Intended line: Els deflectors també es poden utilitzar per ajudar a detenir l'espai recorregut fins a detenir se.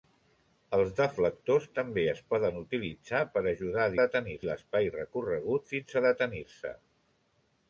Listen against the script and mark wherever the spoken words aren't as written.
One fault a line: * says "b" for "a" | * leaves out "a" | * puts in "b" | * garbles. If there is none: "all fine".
all fine